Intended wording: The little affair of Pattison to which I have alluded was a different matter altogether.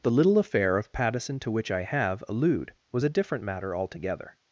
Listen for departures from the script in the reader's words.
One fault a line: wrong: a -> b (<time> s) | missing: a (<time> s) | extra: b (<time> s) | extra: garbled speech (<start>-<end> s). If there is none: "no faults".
wrong: alluded -> allude (2.3 s)